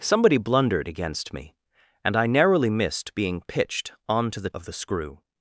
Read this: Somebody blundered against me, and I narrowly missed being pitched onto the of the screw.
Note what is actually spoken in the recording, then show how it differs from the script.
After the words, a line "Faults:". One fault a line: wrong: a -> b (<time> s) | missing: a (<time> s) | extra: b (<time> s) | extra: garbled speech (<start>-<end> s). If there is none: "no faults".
Somebody blundered against me, and I narrowly missed being pitched onto the of the screw.
Faults:
no faults